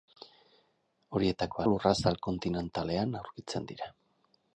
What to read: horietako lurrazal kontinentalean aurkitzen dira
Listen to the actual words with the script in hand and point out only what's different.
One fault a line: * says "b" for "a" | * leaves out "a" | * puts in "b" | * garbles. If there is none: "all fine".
all fine